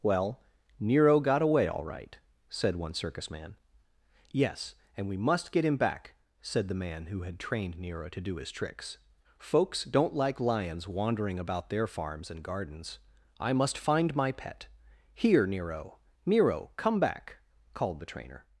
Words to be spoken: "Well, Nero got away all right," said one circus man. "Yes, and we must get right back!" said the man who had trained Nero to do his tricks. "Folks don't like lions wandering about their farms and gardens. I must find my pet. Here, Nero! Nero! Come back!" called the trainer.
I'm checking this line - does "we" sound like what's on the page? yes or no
yes